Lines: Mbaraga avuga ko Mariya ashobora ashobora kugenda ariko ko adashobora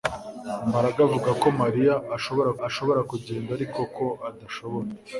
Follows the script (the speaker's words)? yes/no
yes